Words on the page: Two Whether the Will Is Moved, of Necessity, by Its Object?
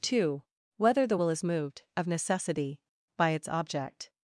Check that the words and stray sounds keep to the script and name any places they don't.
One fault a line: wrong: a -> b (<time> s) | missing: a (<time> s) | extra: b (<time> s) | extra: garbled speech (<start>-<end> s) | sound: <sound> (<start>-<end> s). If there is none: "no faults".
no faults